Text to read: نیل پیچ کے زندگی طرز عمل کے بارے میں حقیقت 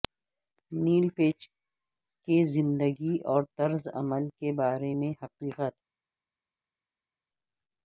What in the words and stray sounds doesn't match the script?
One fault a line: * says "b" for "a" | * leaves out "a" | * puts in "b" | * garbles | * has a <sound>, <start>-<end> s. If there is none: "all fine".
* puts in "اور"